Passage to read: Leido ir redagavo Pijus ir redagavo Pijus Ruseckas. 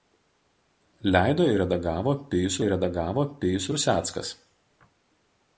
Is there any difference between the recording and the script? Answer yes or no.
no